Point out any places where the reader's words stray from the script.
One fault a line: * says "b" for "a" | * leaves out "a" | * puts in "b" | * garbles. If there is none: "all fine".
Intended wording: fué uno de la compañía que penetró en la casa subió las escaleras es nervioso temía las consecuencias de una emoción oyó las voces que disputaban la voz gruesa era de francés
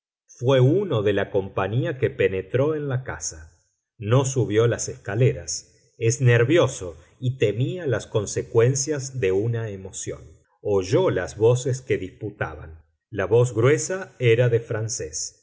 * puts in "no"
* puts in "y"